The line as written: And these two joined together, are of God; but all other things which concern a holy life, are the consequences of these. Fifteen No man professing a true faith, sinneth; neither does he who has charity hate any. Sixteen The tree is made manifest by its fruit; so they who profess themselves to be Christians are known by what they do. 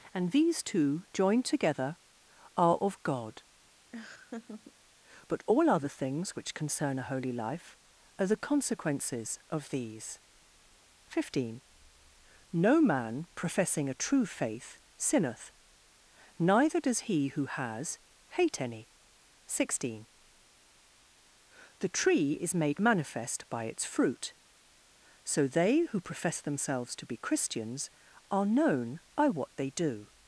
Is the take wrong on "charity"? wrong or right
wrong